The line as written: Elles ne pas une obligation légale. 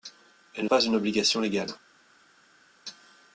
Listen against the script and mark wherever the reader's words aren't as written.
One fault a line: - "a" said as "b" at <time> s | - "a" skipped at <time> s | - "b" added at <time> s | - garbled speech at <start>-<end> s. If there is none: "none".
none